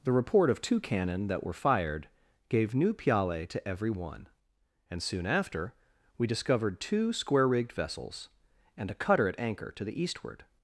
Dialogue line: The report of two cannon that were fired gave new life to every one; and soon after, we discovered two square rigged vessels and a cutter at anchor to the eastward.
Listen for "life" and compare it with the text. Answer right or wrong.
wrong